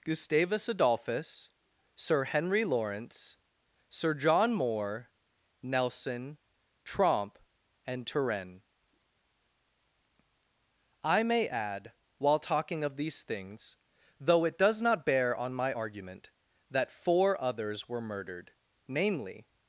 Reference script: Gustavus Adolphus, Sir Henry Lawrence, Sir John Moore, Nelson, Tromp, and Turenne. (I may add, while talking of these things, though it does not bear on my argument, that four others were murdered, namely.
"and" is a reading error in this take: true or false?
false